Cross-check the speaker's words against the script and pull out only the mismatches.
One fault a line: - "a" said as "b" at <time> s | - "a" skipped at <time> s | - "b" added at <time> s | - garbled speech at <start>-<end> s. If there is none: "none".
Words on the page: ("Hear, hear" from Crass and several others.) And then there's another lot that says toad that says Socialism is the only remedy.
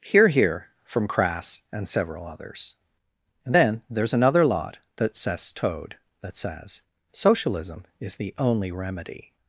none